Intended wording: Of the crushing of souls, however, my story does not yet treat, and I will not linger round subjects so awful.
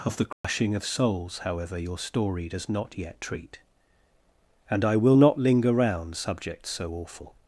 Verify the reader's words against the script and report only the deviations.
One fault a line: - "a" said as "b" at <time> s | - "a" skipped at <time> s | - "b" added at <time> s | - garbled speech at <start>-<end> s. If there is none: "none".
- "my" said as "your" at 1.8 s